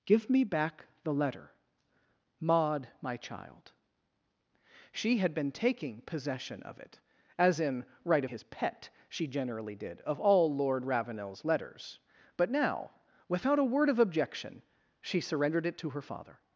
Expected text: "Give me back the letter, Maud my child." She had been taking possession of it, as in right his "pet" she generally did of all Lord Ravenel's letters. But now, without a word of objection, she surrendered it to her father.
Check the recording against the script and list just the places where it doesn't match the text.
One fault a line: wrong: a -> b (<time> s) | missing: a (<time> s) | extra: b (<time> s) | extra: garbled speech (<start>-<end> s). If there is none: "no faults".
no faults